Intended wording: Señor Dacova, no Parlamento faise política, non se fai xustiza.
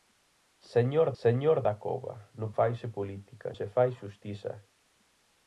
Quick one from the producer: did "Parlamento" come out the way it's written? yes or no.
no